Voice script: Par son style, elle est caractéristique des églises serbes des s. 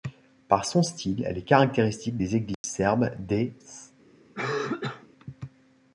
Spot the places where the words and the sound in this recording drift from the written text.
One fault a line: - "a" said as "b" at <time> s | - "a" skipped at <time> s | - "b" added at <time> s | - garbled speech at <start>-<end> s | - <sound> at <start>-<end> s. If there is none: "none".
- dropout at 2.5-2.6 s
- cough at 4.3-5.1 s